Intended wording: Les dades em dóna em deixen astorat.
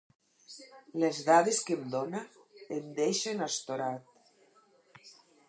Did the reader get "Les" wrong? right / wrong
right